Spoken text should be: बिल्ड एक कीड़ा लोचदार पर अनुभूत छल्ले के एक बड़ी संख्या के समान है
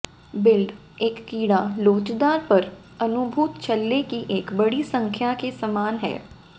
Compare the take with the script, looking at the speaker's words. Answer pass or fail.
fail